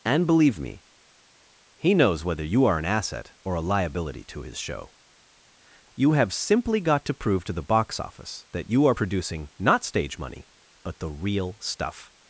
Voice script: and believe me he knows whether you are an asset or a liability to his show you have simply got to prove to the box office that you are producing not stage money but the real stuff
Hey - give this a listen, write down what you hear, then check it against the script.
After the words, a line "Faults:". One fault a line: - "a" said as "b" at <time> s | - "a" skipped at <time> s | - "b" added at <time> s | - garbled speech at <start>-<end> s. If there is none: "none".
and believe me he knows whether you are an asset or a liability to his show you have simply got to prove to the box office that you are producing not stage money but the real stuff
Faults:
none